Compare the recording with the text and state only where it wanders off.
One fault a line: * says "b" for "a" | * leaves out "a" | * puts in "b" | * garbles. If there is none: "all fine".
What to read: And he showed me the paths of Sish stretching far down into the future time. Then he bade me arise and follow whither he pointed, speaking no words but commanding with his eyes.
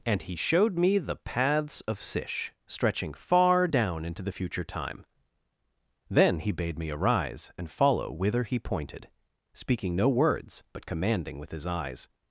all fine